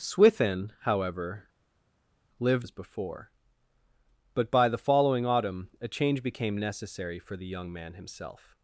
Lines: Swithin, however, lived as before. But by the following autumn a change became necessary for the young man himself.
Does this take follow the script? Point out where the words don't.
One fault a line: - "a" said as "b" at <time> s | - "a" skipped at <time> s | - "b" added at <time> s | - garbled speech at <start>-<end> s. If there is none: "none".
none